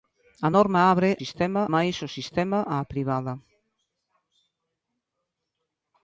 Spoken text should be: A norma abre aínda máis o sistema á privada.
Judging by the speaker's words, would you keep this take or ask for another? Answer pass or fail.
fail